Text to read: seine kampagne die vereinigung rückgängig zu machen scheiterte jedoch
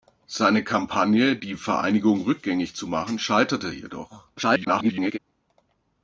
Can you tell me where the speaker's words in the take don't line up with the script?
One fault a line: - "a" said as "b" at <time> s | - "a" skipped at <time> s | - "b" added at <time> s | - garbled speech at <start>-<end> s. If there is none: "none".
- garbled speech at 4.4-5.2 s